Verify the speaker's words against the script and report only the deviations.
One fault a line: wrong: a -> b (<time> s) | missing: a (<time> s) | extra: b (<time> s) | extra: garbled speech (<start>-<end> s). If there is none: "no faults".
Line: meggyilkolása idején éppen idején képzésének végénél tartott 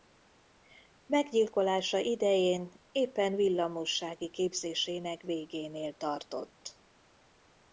wrong: idején -> villamossági (3.4 s)